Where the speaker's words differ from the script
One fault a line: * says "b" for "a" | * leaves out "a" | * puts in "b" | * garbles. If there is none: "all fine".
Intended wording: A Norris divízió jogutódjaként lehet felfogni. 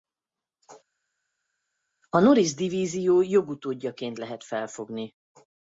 all fine